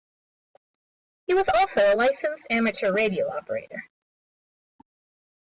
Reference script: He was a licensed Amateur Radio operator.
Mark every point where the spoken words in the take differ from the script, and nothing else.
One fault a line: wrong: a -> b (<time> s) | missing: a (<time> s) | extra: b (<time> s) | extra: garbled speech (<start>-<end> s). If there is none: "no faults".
extra: also (1.5 s)